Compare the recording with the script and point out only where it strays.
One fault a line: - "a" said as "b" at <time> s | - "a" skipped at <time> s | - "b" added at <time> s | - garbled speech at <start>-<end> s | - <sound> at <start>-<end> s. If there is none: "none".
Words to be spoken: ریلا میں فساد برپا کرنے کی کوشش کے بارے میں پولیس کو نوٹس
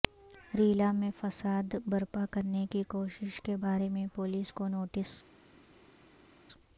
none